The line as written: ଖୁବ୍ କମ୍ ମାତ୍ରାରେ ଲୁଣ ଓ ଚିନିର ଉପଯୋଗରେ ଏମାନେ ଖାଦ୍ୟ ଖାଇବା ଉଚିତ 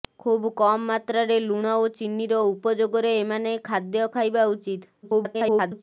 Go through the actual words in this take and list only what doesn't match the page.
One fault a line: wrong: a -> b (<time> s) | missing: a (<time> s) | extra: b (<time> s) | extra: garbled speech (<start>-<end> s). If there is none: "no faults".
extra: garbled speech (5.0-5.8 s)